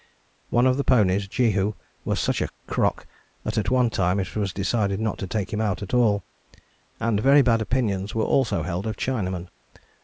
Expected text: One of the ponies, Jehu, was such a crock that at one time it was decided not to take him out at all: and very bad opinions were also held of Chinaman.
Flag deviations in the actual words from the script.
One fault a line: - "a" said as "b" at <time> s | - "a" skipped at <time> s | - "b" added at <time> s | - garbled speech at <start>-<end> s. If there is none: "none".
none